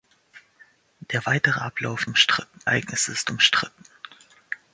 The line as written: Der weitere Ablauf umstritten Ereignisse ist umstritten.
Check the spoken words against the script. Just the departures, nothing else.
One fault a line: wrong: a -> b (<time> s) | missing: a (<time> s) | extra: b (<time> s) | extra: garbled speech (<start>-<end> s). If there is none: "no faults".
no faults